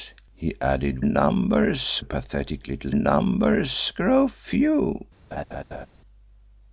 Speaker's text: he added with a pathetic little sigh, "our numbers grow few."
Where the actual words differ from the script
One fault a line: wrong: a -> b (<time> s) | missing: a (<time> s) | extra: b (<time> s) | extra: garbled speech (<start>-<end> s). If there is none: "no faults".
wrong: with -> numbers (1.0 s)
missing: sigh our (2.9 s)